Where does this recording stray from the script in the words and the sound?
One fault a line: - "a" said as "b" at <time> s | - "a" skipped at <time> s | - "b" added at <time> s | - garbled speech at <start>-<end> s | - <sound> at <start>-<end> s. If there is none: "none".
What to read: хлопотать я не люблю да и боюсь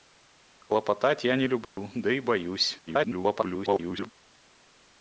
- dropout at 1.6-1.8 s
- garbled speech at 2.9-4.1 s